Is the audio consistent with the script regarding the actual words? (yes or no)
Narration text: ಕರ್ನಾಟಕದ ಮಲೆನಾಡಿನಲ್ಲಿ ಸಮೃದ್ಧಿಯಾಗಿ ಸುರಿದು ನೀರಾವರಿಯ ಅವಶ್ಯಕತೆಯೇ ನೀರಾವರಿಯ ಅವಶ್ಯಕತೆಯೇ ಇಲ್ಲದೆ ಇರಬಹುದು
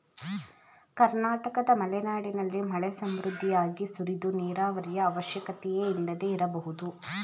no